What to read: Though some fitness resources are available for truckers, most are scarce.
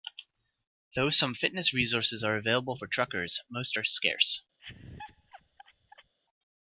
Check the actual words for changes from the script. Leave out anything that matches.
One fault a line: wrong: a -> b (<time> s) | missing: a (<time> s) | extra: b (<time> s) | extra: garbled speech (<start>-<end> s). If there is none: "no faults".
no faults